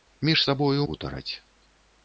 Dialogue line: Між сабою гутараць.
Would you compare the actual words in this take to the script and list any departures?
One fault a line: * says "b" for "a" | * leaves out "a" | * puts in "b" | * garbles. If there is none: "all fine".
all fine